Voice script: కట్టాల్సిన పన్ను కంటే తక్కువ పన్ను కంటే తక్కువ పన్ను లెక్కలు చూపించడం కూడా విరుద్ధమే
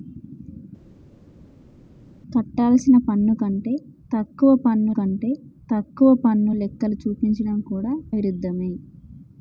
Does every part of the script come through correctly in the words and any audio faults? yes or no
yes